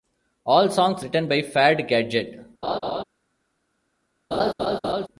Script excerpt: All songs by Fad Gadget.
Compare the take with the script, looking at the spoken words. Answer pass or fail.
fail